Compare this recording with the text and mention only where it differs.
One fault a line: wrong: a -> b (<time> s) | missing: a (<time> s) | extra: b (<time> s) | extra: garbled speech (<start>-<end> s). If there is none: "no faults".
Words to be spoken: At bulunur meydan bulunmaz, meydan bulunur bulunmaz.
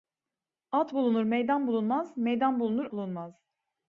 no faults